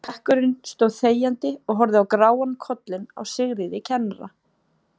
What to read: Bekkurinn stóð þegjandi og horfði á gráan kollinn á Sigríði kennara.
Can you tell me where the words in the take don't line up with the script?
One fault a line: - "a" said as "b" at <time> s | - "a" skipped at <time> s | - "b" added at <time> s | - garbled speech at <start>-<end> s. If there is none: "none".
none